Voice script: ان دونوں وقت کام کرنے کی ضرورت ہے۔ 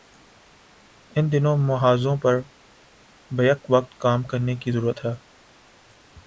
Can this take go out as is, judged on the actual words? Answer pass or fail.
fail